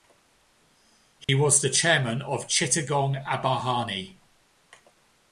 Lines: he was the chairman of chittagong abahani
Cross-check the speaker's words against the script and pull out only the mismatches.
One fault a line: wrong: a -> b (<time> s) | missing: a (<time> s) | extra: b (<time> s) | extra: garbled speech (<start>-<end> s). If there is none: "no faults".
no faults